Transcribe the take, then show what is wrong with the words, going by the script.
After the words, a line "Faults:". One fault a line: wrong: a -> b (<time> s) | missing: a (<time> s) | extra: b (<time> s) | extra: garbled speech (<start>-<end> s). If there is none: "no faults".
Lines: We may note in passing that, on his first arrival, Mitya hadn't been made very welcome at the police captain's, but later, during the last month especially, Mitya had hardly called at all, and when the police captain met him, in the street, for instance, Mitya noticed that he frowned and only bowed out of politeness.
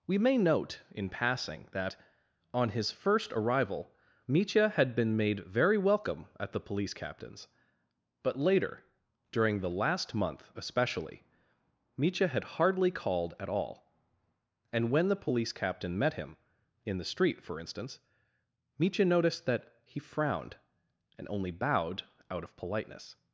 We may note in passing that, on his first arrival, Mitya had been made very welcome at the police captain's, but later, during the last month especially, Mitya had hardly called at all, and when the police captain met him, in the street, for instance, Mitya noticed that he frowned and only bowed out of politeness.
Faults:
wrong: hadn't -> had (4.7 s)